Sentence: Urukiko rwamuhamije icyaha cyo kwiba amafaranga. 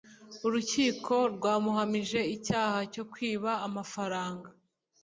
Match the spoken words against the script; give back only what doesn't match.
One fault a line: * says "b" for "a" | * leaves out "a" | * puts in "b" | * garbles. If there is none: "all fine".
all fine